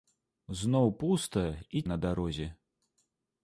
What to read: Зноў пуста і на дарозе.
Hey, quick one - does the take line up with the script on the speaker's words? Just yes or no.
yes